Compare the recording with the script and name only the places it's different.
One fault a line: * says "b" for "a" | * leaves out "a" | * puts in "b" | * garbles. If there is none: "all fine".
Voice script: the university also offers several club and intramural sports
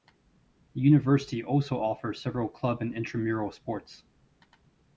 all fine